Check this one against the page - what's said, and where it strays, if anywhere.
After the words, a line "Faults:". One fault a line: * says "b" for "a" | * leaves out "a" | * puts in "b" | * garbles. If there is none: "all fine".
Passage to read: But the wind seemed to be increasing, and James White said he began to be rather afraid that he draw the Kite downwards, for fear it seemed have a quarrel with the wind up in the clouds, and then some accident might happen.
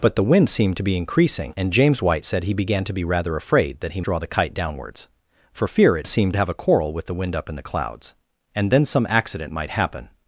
But the wind seemed to be increasing, and James White said he began to be rather afraid that he draw the Kite downwards, for fear it seemed have a quarrel with the wind up in the clouds, and then some accident might happen.
Faults:
all fine